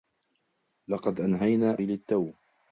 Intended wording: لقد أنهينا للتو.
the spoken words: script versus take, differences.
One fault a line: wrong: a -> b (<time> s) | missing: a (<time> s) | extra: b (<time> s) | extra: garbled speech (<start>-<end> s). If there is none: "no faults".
no faults